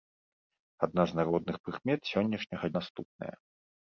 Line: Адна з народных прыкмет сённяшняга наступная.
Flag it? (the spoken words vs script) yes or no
no